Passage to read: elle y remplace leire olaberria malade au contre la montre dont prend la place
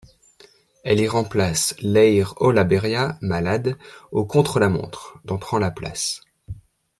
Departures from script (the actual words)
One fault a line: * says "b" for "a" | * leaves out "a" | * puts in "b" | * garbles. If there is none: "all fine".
all fine